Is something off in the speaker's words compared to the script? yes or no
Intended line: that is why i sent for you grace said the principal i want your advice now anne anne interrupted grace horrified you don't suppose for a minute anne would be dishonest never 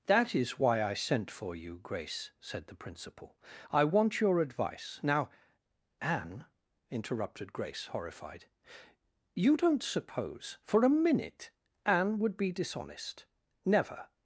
yes